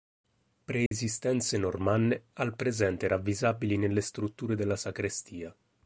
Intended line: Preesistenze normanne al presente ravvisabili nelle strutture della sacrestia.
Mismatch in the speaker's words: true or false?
false